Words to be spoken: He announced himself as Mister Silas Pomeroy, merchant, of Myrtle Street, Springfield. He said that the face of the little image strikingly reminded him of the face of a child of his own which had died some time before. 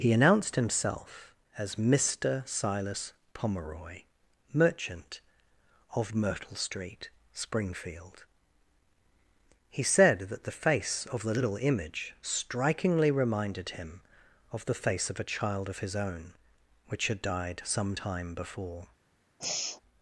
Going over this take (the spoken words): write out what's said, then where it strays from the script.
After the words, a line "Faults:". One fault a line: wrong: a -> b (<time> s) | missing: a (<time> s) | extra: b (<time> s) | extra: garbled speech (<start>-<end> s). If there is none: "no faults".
He announced himself as Mister Silas Pomeroy, merchant, of Myrtle Street, Springfield. He said that the face of the little image strikingly reminded him of the face of a child of his own which had died some time before.
Faults:
no faults